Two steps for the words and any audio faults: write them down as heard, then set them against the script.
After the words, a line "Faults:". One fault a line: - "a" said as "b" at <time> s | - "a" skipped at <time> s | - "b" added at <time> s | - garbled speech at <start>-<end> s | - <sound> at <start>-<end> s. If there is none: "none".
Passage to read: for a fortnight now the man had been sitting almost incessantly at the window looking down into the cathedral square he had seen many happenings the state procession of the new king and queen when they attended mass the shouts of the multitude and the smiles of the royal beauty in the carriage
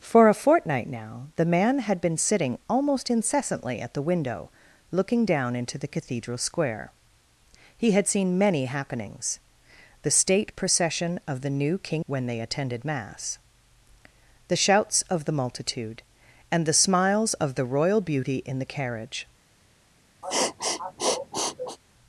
for a fortnight now the man had been sitting almost incessantly at the window looking down into the cathedral square he had seen many happenings the state procession of the new king when they attended mass the shouts of the multitude and the smiles of the royal beauty in the carriage
Faults:
- "and queen" skipped at 12.1 s
- sniff at 20.2-21.8 s